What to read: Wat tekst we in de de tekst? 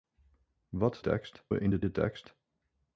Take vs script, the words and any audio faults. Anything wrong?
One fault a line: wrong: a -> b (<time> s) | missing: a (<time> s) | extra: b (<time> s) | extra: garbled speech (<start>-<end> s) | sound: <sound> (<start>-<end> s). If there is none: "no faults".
no faults